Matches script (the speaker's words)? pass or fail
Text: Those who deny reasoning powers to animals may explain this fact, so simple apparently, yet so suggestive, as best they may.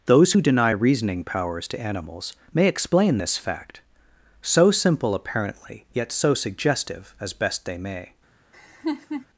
pass